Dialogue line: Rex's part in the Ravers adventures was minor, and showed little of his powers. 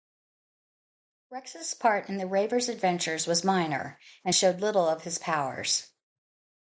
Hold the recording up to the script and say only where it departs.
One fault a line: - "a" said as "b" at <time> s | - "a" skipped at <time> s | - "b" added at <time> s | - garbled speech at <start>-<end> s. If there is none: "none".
none